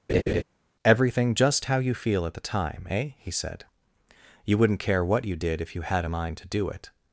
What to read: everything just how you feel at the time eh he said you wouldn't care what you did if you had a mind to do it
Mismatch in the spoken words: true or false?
false